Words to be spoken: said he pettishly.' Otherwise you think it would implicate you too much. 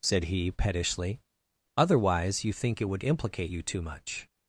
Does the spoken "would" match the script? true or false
true